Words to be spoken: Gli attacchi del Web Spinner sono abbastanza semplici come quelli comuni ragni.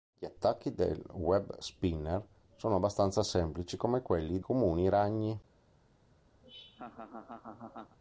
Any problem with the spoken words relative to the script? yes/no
no